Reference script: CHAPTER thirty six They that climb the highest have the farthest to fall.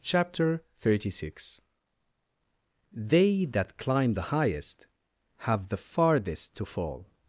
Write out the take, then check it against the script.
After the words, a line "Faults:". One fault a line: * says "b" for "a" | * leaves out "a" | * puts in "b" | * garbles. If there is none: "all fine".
CHAPTER thirty six They that climb the highest have the farthest to fall.
Faults:
all fine